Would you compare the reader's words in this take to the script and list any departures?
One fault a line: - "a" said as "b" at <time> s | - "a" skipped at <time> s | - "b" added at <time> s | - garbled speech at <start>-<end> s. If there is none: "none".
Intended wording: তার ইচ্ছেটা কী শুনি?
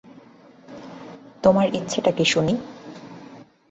- "তার" said as "তোমার" at 1.4 s